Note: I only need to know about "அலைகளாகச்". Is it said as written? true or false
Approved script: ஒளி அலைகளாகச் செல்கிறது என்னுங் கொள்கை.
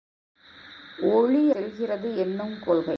false